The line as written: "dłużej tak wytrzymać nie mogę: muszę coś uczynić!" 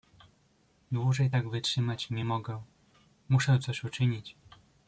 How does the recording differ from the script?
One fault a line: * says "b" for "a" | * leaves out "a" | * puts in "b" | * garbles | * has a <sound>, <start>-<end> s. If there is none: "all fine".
all fine